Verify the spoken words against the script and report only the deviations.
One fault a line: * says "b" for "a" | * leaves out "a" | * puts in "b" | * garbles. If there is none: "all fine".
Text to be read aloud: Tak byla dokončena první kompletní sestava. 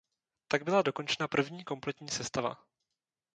all fine